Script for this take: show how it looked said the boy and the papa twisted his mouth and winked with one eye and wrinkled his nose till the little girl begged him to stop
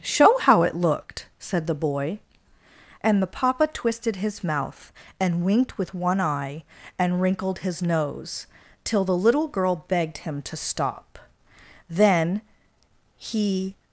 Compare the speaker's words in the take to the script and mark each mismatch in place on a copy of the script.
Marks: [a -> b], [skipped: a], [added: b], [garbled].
show how it looked said the boy and the papa twisted his mouth and winked with one eye and wrinkled his nose till the little girl begged him to stop [added: then he]